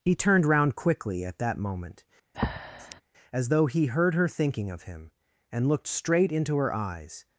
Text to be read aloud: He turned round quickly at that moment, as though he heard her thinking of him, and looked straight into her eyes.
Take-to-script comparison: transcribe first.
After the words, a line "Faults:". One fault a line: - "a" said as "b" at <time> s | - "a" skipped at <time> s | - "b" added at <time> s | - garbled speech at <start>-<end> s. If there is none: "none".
He turned round quickly at that moment, as though he heard her thinking of him, and looked straight into her eyes.
Faults:
none